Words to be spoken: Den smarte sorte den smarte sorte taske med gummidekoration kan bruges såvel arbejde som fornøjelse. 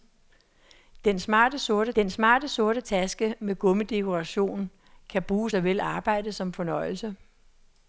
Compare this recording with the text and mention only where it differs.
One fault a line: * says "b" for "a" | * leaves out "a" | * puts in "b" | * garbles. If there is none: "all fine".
all fine